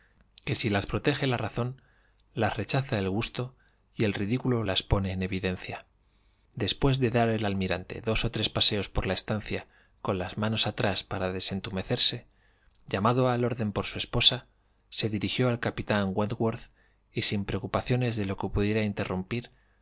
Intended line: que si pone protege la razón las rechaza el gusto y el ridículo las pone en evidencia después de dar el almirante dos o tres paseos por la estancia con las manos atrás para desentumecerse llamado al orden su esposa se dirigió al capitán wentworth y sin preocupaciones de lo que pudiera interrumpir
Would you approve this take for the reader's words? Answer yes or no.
no